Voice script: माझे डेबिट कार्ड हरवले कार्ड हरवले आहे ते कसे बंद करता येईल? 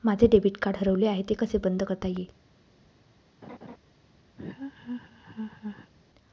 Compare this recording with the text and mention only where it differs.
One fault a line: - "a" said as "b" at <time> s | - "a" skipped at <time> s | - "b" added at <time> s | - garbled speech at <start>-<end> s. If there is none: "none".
- "कार्ड हरवले" skipped at 1.1 s